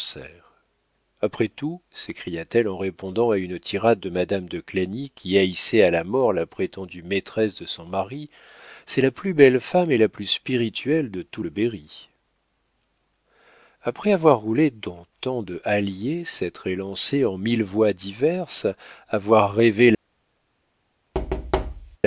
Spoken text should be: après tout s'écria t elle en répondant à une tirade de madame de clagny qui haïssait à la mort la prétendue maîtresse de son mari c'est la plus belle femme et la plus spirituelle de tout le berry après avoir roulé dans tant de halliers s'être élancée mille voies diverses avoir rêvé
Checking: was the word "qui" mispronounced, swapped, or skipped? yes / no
no